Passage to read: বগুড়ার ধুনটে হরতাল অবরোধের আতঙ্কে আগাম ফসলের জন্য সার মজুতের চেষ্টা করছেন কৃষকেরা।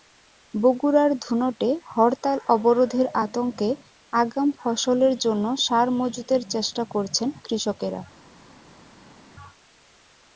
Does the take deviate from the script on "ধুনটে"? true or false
false